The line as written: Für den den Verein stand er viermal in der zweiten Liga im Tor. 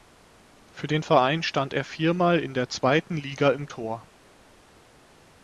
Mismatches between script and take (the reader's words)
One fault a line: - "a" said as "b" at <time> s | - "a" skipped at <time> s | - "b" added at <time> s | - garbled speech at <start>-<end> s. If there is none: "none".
- "den" skipped at 1.0 s